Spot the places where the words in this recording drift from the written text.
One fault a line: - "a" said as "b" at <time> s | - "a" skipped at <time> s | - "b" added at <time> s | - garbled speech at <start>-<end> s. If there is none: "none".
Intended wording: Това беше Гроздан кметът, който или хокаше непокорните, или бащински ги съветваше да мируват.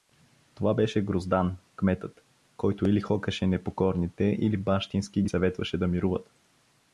none